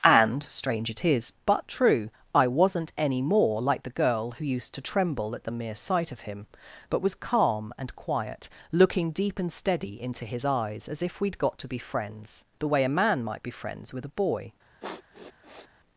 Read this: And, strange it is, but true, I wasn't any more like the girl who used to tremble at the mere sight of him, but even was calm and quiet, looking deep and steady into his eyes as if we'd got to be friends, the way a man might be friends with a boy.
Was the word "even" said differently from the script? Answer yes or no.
yes